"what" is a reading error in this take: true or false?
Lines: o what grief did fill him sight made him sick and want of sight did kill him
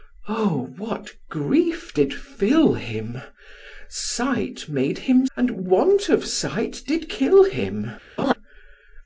false